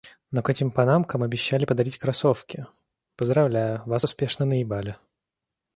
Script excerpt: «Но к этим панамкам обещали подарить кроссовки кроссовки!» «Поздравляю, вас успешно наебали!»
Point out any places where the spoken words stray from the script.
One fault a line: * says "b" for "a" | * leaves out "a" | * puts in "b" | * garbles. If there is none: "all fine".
* leaves out "кроссовки"